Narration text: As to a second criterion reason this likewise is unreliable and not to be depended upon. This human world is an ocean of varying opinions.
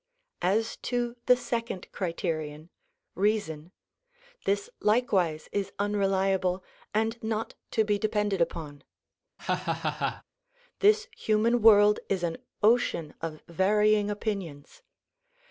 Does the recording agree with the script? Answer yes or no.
no